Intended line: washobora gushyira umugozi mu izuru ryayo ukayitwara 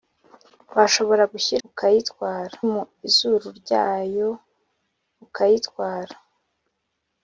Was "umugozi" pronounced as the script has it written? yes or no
no